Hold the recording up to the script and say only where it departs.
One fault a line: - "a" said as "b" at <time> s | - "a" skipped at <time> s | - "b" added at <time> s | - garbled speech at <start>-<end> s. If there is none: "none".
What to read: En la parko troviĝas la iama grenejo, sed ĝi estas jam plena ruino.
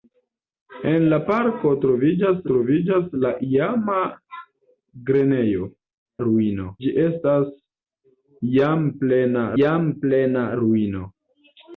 - "troviĝas" added at 2.5 s
- "sed" said as "ruino" at 6.3 s
- "jam plena" added at 9.6 s